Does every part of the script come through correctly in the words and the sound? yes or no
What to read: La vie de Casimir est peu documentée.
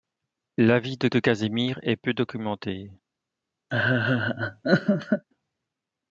no